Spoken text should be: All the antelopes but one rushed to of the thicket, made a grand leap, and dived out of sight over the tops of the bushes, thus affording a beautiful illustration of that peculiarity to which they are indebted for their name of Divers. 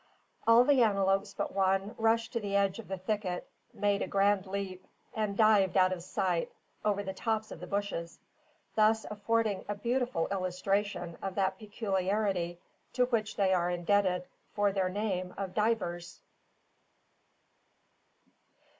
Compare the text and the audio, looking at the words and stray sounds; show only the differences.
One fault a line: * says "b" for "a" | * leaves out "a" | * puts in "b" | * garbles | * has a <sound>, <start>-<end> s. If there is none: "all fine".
* puts in "the edge"